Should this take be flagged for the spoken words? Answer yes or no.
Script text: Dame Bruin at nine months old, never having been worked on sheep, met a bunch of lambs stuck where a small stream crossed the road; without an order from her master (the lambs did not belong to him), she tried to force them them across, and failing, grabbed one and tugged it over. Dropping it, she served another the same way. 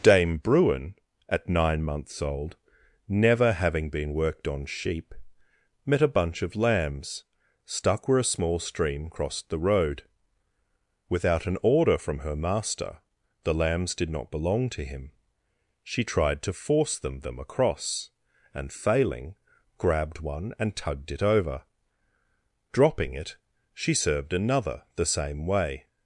no